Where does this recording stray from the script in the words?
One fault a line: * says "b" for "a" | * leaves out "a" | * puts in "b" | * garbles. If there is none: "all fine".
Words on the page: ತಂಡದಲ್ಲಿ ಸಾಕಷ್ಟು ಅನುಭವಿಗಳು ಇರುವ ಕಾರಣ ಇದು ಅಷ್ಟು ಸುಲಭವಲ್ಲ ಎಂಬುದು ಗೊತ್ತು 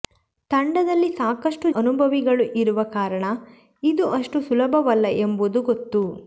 all fine